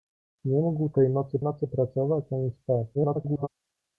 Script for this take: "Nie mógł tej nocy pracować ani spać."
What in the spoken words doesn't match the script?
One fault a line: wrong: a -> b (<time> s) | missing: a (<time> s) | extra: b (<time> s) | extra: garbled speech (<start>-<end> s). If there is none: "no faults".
extra: nocy (1.4 s)
extra: garbled speech (2.9-3.5 s)